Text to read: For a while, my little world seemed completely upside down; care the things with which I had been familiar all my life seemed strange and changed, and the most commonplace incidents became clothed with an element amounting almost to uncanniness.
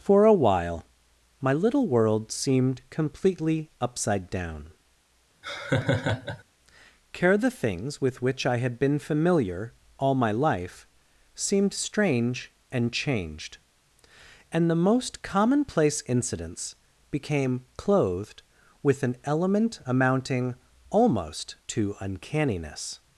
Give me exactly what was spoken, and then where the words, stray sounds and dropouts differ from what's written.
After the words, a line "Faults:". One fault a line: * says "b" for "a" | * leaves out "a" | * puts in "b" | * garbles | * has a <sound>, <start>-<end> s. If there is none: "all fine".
For a while, my little world seemed completely upside down; care the things with which I had been familiar all my life seemed strange and changed, and the most commonplace incidents became clothed with an element amounting almost to uncanniness.
Faults:
* has a laugh, 5.4-6.4 s